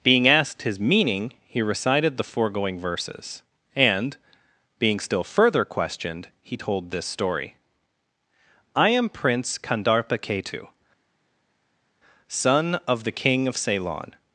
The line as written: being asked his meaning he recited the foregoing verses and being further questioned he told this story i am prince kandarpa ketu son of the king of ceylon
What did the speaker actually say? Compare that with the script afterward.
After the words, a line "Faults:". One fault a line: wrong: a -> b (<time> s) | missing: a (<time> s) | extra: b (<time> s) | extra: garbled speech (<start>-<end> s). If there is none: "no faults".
being asked his meaning he recited the foregoing verses and being still further questioned he told this story i am prince kandarpa ketu son of the king of ceylon
Faults:
extra: still (5.0 s)